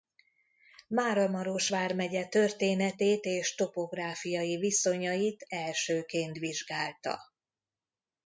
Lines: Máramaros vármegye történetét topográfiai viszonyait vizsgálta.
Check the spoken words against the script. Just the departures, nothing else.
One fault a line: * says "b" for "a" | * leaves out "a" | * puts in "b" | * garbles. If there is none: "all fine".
* puts in "és"
* puts in "elsőként"